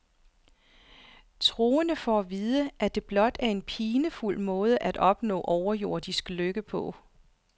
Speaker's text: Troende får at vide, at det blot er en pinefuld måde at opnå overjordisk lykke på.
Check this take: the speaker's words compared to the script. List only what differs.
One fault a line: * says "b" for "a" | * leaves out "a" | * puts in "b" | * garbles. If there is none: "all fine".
all fine